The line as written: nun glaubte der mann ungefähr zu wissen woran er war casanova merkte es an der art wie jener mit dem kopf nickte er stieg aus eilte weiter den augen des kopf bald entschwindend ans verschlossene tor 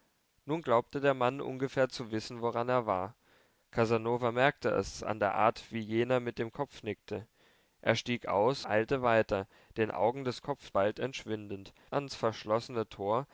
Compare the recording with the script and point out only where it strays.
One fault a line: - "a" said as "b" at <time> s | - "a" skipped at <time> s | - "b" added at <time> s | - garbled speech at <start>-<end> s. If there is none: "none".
none